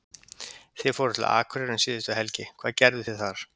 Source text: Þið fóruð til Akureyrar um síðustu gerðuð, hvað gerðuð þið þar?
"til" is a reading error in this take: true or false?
false